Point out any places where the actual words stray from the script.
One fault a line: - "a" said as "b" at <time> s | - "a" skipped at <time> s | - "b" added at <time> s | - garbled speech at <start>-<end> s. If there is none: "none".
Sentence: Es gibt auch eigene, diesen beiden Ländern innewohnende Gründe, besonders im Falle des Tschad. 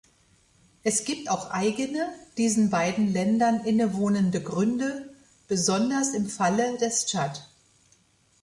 none